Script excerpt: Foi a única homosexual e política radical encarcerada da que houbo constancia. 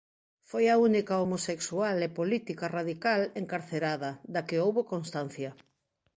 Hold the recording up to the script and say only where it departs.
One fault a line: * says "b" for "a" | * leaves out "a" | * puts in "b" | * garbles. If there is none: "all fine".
all fine